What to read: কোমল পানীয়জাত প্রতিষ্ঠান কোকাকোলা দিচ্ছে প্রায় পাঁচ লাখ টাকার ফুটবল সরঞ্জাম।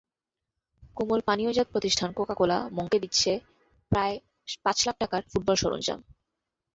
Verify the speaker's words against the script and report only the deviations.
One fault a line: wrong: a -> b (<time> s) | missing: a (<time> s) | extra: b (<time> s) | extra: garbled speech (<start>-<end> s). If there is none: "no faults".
extra: মংকে (2.7 s)